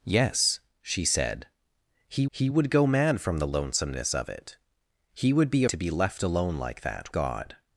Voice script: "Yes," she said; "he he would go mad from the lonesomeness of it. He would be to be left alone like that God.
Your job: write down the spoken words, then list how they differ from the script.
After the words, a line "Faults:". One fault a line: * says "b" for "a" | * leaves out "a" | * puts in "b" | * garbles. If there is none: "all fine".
"Yes," she said; "he he would go mad from the lonesomeness of it. He would be to be left alone like that God.
Faults:
all fine